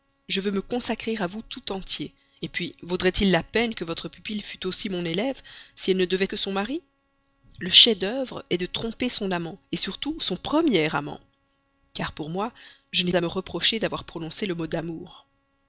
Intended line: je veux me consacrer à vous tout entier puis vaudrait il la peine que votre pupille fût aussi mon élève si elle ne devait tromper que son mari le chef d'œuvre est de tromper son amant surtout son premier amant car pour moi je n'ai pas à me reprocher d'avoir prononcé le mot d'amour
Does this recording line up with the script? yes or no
no